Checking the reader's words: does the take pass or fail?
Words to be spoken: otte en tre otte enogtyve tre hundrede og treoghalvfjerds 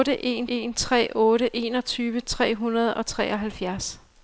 fail